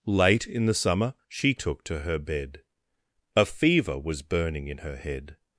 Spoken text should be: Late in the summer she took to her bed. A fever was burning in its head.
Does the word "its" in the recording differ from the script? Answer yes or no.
yes